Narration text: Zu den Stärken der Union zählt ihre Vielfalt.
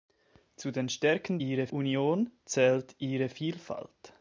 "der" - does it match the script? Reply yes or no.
no